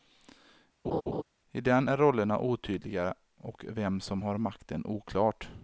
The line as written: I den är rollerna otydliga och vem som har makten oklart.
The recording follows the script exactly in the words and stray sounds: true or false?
false